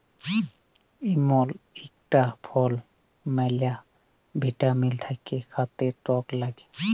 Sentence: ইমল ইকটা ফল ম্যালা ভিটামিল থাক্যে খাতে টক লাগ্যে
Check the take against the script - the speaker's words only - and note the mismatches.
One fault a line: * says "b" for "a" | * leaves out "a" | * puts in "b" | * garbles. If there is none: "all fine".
all fine